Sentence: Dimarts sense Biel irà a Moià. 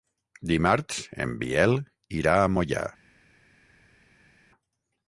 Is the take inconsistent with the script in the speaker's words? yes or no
yes